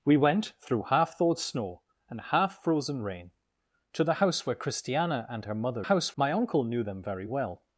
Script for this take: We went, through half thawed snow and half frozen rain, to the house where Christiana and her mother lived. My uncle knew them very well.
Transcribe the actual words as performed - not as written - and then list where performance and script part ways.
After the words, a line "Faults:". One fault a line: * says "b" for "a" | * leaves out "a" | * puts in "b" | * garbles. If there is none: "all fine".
We went, through half thawed snow and half frozen rain, to the house where Christiana and her mother house. My uncle knew them very well.
Faults:
* says "house" for "lived"